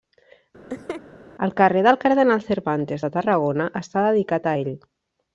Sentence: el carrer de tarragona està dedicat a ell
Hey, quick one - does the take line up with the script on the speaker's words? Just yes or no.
no